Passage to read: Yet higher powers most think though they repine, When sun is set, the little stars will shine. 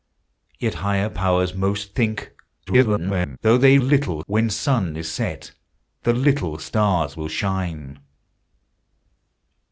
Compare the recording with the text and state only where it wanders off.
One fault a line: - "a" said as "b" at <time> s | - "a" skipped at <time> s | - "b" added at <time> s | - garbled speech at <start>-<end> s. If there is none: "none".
- garbled speech at 2.7-3.4 s
- "repine" said as "little" at 3.8 s